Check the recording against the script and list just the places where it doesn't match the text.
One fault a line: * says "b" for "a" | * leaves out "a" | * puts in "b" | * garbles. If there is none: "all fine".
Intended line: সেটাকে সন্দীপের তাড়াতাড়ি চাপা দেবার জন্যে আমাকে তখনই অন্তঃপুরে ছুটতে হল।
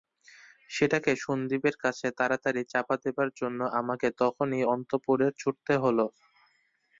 * puts in "কাছে"